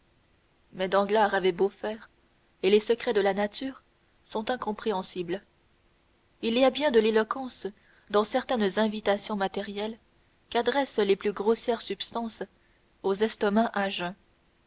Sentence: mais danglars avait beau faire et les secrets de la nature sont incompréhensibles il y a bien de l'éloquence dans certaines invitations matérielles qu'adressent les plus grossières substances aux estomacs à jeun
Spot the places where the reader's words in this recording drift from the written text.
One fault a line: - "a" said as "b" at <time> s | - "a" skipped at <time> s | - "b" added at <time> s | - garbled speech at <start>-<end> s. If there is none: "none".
none